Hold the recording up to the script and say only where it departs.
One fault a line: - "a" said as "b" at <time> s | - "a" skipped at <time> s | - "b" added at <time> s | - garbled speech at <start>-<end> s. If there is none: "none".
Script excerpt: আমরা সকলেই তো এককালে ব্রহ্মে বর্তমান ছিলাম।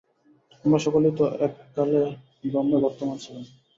none